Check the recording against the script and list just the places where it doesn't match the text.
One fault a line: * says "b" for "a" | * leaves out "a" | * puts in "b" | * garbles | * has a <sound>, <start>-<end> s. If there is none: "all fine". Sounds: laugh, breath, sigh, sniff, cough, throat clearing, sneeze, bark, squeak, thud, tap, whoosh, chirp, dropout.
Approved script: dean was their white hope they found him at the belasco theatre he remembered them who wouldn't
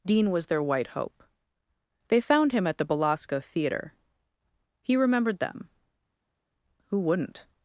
all fine